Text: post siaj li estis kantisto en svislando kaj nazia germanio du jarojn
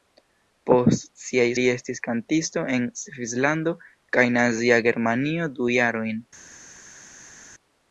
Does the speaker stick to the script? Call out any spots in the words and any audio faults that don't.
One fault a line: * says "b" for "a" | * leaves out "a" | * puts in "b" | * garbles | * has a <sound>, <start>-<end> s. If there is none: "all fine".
all fine